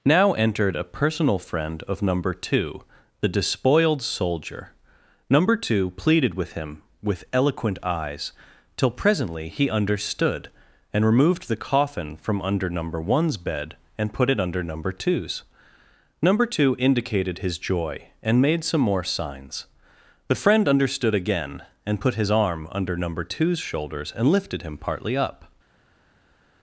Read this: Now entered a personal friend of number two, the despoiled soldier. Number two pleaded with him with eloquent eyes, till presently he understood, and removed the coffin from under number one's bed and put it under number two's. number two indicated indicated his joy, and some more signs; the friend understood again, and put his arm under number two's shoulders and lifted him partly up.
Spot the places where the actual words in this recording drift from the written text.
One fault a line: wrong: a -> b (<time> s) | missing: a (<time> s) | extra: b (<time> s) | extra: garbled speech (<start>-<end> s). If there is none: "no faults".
missing: indicated (17.4 s)
extra: made (18.4 s)